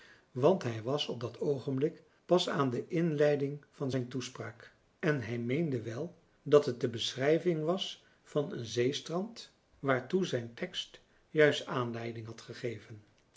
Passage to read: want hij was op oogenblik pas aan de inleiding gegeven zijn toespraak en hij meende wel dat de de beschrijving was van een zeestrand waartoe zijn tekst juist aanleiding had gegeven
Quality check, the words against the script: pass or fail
fail